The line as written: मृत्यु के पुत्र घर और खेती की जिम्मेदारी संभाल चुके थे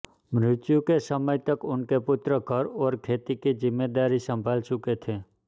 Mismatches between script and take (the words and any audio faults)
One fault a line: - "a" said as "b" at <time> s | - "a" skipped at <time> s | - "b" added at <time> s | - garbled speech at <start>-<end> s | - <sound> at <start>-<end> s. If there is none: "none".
- "समय तक उनके" added at 1.0 s